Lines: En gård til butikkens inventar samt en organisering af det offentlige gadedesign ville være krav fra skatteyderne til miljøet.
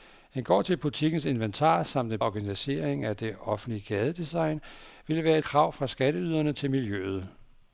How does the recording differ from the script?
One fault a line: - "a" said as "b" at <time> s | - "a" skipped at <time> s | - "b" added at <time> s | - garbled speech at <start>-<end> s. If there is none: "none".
none